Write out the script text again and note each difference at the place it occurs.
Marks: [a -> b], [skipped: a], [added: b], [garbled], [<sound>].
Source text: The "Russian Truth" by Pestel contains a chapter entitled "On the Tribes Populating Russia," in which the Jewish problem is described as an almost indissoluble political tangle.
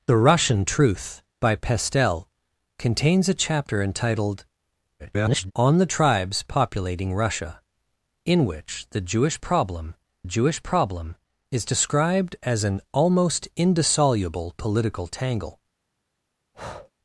The "Russian Truth" by Pestel contains a chapter entitled [garbled] "On the Tribes Populating Russia," in which the Jewish problem [added: Jewish problem] is described as an almost indissoluble political tangle. [breath]